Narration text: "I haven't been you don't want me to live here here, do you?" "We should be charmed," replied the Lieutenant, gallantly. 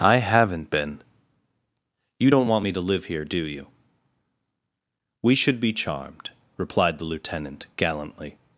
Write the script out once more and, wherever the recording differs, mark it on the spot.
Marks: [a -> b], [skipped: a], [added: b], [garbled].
"I haven't been you don't want me to live here [skipped: here,] do you?" "We should be charmed," replied the Lieutenant, gallantly.